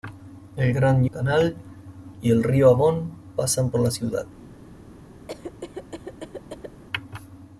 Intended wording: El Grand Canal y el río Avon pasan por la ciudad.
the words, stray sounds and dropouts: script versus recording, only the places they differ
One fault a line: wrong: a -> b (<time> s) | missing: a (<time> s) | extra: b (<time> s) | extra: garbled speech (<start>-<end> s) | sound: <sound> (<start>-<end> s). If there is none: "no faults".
sound: cough (5.3-6.8 s)